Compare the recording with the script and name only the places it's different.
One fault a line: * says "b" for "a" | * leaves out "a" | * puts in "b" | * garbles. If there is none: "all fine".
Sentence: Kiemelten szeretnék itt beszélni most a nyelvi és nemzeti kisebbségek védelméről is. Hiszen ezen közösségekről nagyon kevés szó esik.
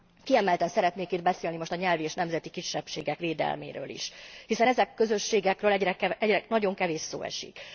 all fine